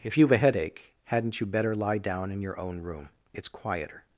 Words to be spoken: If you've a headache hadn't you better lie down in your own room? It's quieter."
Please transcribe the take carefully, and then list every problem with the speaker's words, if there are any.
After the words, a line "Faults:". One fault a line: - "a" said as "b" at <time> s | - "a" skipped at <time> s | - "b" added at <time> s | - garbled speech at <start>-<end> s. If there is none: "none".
If you've a headache hadn't you better lie down in your own room? It's quieter."
Faults:
none